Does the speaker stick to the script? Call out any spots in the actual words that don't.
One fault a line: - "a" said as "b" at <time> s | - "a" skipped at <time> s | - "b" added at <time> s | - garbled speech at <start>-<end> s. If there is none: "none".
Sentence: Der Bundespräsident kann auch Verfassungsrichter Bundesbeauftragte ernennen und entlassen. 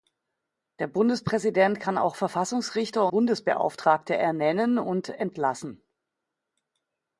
none